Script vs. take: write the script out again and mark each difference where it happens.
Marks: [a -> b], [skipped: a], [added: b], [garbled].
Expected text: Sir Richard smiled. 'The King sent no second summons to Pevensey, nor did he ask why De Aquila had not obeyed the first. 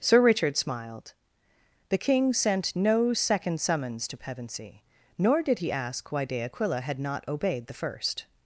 Sir Richard smiled. 'The King sent no second summons to Pevensey, nor did he ask why De Aquila had not obeyed the first.